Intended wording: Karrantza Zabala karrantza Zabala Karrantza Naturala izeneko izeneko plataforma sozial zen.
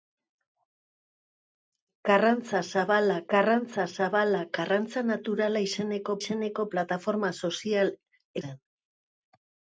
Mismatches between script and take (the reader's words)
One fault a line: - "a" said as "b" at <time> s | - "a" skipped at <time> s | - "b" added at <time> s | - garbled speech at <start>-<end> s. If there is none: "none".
none